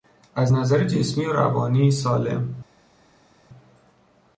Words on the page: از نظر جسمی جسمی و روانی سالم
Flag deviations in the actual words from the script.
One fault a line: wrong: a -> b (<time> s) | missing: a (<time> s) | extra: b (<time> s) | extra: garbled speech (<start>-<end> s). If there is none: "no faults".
missing: جسمی (1.2 s)